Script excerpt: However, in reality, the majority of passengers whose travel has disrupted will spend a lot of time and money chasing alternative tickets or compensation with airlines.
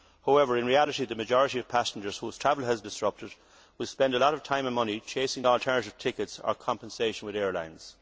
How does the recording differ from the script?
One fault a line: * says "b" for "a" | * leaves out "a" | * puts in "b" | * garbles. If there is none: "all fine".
all fine